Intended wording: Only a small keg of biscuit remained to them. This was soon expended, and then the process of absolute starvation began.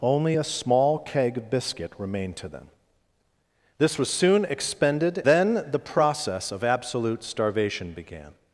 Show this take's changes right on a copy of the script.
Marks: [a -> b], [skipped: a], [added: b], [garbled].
Only a small keg of biscuit remained to them. This was soon expended, [skipped: and] then the process of absolute starvation began.